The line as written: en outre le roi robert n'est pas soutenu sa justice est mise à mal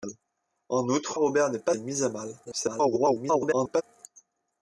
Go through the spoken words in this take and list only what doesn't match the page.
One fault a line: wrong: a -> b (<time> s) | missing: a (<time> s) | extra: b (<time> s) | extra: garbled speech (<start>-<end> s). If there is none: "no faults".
missing: le roi (1.2 s)
missing: soutenu sa justice (1.7 s)
extra: garbled speech (2.4-3.8 s)